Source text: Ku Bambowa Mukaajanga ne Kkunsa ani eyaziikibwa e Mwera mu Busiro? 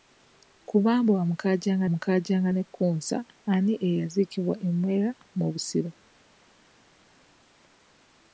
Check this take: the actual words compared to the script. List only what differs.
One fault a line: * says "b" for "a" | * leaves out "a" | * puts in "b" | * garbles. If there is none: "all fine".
* puts in "Mukaajanga"